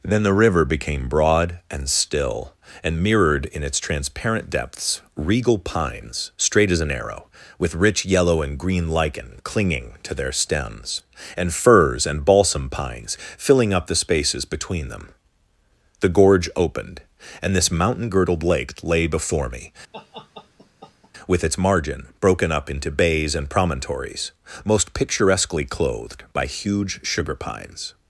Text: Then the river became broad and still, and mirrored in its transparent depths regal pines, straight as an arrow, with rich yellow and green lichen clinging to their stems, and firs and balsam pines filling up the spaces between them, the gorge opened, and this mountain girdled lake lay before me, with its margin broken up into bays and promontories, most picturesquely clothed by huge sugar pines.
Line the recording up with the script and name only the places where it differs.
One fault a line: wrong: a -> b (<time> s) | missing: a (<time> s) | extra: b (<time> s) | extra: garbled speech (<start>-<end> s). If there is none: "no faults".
no faults